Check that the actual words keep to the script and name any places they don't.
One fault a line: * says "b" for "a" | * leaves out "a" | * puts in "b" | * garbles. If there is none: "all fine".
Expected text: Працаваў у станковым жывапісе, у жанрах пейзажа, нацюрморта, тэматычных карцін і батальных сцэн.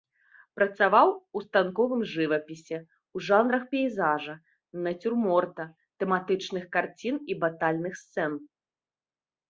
all fine